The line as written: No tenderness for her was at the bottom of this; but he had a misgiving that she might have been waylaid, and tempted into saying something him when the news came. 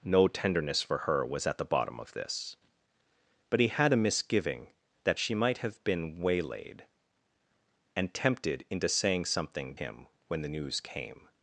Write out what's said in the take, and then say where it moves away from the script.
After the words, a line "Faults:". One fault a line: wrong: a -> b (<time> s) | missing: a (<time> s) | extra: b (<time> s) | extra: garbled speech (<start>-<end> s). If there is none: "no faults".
No tenderness for her was at the bottom of this; but he had a misgiving that she might have been waylaid, and tempted into saying something him when the news came.
Faults:
no faults